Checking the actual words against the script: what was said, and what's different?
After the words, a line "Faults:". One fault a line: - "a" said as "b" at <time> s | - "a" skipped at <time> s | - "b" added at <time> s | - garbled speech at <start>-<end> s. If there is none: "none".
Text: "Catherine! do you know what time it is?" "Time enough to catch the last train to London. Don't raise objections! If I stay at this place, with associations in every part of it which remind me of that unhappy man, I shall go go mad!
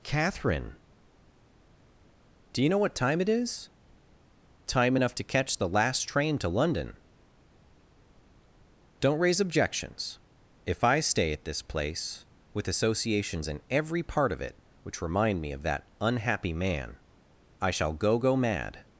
"Catherine! do you know what time it is?" "Time enough to catch the last train to London. Don't raise objections! If I stay at this place, with associations in every part of it which remind me of that unhappy man, I shall go go mad!
Faults:
none